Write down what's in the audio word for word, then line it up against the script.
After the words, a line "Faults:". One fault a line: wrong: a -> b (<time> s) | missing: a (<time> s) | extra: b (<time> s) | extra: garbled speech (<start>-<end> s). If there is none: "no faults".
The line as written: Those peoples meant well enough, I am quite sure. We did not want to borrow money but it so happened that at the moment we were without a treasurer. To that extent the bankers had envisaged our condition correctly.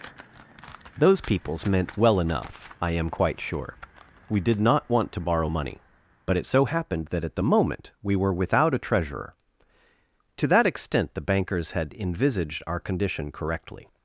Those peoples meant well enough, I am quite sure. We did not want to borrow money but it so happened that at the moment we were without a treasurer. To that extent the bankers had envisaged our condition correctly.
Faults:
no faults